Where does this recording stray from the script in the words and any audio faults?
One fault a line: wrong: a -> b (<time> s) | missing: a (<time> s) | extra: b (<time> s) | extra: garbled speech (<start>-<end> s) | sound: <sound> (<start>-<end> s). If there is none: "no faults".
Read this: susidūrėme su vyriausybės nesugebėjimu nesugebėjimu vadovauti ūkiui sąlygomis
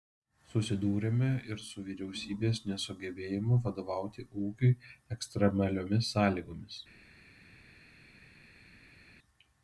extra: ir (1.5 s)
missing: nesugebėjimu (3.6 s)
extra: ekstremaliomis (5.2 s)